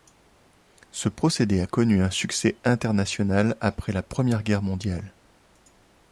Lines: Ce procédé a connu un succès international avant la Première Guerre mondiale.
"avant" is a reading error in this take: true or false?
true